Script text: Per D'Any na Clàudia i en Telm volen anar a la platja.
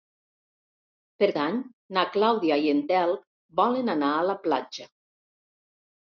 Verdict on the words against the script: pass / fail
pass